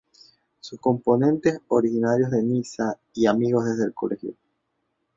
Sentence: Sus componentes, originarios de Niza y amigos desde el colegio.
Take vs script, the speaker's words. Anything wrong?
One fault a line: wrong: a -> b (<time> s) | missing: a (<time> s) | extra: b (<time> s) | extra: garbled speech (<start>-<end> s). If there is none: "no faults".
no faults